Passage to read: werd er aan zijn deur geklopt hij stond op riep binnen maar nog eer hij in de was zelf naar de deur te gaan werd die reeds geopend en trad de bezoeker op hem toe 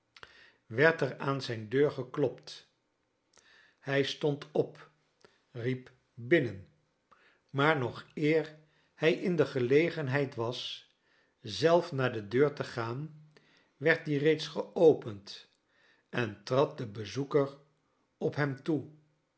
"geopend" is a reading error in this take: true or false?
false